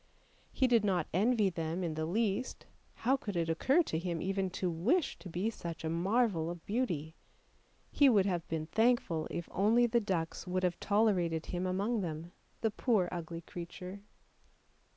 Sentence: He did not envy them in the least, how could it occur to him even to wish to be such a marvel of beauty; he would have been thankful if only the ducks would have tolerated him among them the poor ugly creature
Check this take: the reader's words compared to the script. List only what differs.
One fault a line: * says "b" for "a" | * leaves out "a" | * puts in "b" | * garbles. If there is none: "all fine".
all fine